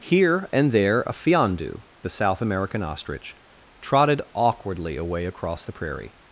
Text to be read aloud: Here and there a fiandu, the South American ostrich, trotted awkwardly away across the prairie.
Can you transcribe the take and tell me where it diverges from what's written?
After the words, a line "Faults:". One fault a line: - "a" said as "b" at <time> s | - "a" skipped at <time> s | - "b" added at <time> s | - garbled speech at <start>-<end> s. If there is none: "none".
Here and there a fiandu, the South American ostrich, trotted awkwardly away across the prairie.
Faults:
none